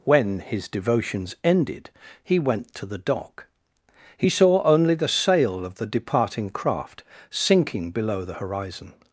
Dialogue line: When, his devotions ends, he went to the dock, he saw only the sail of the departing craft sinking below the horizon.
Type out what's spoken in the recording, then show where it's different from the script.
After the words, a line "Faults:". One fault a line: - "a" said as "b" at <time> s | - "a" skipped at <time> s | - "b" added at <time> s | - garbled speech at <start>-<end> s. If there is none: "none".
When, his devotions ended, he went to the dock, he saw only the sail of the departing craft sinking below the horizon.
Faults:
- "ends" said as "ended" at 1.4 s